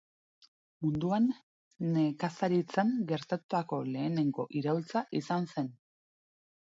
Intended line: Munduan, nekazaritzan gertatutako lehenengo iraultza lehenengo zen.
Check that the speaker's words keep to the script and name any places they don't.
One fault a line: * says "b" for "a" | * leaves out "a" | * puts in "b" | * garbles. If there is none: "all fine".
* says "izan" for "lehenengo"